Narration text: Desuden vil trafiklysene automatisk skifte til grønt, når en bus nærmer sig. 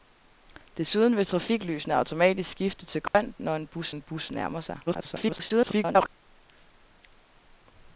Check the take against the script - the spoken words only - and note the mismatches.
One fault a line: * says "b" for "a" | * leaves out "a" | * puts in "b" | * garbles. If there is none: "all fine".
* puts in "en bus"
* garbles